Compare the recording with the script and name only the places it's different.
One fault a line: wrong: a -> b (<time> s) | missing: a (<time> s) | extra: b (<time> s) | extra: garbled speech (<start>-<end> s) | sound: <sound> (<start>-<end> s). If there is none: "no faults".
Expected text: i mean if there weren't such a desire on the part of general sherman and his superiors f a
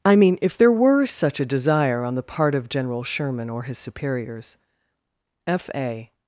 wrong: weren't -> were (0.7 s)
wrong: and -> or (3.5 s)